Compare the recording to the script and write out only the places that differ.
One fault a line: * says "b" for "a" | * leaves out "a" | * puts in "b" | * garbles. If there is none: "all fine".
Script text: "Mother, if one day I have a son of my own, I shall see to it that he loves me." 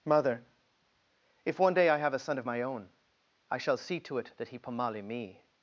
* says "pomali" for "loves"